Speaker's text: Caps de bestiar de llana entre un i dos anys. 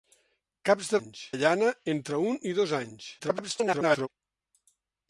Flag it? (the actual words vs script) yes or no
yes